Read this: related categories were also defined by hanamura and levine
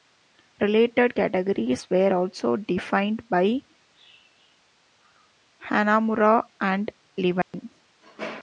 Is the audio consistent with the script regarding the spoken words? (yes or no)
yes